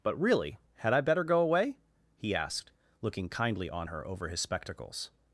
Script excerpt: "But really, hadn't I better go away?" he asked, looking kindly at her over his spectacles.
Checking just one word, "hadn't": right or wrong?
wrong